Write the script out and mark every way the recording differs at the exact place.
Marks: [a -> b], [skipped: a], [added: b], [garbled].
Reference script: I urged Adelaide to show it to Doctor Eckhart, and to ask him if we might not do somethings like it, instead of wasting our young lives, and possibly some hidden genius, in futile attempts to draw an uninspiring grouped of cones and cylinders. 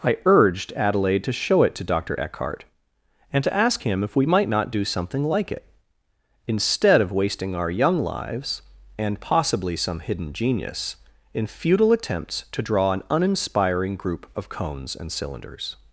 I urged Adelaide to show it to Doctor Eckhart, and to ask him if we might not do [somethings -> something] like it, instead of wasting our young lives, and possibly some hidden genius, in futile attempts to draw an uninspiring [grouped -> group] of cones and cylinders.